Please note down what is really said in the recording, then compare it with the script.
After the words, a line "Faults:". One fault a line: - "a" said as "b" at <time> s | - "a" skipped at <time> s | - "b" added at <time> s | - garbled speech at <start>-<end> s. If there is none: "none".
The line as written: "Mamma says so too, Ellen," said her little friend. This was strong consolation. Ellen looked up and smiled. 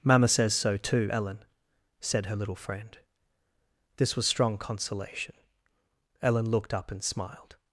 "Mamma says so too, Ellen," said her little friend. This was strong consolation. Ellen looked up and smiled.
Faults:
none